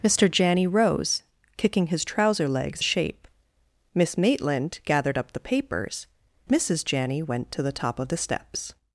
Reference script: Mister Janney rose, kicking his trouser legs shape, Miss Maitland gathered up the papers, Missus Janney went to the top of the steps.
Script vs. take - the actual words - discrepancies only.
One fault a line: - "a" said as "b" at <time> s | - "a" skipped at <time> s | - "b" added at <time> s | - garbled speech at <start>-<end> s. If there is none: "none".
none